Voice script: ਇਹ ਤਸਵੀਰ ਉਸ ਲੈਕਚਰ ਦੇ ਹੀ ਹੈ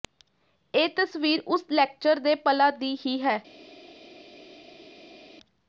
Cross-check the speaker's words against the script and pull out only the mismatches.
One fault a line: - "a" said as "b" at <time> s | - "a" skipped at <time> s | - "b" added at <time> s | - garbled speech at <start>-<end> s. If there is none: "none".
- "ਪਲਾਂ ਦੀ" added at 2.4 s